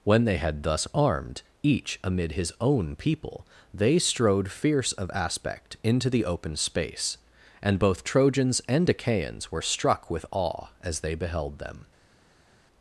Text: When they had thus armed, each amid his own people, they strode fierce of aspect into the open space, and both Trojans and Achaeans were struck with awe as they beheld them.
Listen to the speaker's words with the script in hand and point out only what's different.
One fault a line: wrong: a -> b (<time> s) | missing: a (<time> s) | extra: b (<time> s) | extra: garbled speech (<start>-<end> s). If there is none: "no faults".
no faults